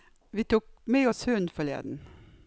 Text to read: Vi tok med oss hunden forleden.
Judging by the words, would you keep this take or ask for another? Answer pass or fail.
pass